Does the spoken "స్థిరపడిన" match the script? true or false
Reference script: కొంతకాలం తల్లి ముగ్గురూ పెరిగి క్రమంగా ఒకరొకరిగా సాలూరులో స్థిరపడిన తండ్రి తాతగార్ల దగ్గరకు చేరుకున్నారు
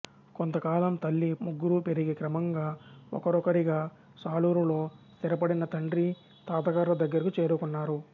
true